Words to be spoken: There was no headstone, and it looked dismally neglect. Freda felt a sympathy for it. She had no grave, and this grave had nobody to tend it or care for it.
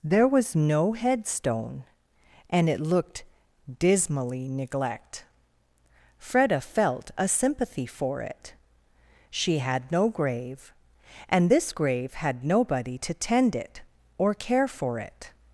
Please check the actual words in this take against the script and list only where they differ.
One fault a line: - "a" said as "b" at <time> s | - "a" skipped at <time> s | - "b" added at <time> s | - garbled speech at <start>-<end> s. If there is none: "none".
none